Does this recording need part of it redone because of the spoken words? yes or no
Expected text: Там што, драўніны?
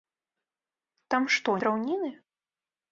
no